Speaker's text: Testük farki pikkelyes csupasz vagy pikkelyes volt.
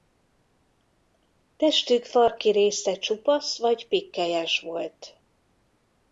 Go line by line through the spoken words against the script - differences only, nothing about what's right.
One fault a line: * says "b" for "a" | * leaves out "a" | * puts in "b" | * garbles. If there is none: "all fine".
* says "része" for "pikkelyes"